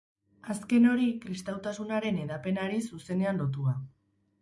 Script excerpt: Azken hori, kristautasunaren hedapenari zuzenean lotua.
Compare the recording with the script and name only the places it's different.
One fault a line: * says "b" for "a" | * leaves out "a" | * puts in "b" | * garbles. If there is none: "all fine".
all fine